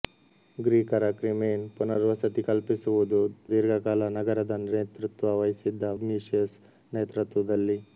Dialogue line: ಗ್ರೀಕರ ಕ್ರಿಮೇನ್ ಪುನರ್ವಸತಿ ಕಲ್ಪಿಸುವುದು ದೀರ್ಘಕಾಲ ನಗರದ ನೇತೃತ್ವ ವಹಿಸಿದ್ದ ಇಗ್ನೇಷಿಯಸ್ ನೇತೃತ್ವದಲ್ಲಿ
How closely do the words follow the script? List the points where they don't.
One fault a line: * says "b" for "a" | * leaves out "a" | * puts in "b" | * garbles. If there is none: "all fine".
all fine